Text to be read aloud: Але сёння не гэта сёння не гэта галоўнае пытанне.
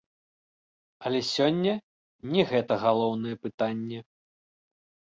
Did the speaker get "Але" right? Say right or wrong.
right